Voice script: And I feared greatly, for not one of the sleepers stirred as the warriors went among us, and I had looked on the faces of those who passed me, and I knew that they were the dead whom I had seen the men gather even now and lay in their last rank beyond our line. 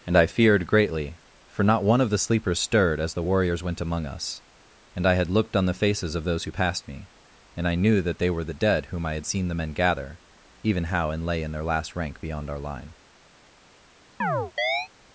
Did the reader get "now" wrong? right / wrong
wrong